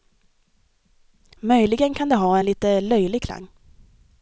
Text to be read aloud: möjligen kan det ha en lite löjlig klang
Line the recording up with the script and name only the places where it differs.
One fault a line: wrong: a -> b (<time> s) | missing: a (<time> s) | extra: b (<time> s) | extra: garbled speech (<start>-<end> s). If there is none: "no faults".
no faults